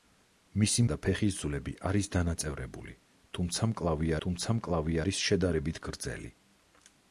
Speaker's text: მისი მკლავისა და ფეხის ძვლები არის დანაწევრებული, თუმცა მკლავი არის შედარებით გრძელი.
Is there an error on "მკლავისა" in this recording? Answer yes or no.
yes